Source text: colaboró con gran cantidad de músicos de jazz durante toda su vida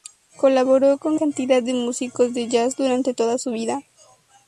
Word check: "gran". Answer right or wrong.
wrong